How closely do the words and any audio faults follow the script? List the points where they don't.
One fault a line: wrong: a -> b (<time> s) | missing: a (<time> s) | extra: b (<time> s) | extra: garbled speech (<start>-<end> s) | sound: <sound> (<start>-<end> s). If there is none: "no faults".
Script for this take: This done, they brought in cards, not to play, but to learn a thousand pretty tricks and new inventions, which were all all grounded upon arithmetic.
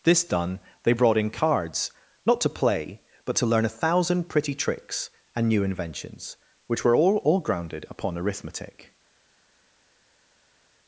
no faults